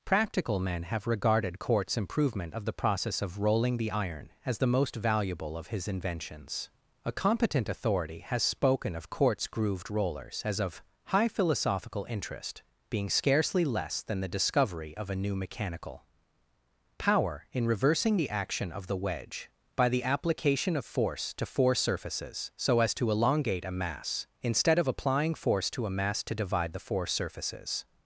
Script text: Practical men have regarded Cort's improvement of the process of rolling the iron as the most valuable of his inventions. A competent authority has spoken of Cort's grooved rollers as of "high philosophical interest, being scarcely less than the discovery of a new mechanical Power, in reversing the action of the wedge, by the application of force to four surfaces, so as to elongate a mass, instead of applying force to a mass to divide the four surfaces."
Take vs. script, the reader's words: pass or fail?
pass